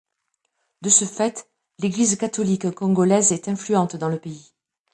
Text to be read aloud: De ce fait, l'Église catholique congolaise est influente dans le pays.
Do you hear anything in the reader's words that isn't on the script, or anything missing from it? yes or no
no